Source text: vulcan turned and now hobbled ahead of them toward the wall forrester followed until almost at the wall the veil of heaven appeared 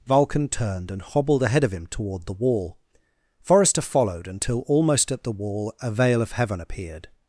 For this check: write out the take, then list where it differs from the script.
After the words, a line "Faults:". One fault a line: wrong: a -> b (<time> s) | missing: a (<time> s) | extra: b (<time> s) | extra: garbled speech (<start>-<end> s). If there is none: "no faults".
vulcan turned and hobbled ahead of him toward the wall forrester followed until almost at the wall a veil of heaven appeared
Faults:
missing: now (1.0 s)
wrong: them -> him (1.7 s)
wrong: the -> a (5.8 s)